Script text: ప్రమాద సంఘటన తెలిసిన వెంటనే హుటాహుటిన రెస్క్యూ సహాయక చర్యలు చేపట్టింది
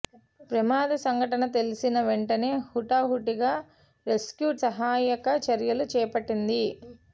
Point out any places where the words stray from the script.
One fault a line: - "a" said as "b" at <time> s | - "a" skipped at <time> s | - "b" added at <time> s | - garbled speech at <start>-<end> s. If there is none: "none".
none